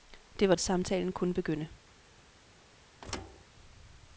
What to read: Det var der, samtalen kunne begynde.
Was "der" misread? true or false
true